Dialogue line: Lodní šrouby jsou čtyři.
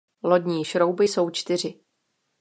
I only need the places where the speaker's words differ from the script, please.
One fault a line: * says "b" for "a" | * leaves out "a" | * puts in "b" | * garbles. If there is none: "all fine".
all fine